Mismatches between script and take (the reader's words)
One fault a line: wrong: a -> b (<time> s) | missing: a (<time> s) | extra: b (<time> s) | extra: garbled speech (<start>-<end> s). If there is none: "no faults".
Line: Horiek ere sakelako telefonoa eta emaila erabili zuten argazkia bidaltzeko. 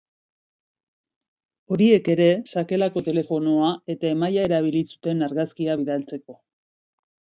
no faults